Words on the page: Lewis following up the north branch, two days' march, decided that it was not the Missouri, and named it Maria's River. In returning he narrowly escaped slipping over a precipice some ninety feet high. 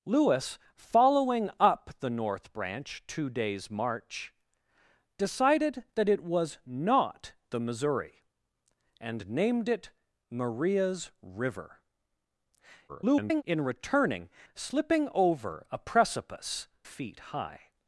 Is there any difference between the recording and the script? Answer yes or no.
yes